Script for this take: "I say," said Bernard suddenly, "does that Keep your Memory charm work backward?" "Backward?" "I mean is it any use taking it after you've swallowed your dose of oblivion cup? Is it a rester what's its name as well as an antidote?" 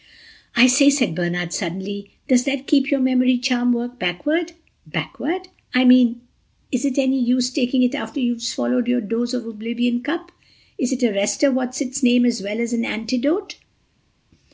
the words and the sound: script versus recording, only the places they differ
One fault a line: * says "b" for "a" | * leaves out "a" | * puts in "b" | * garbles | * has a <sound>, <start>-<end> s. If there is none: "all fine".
all fine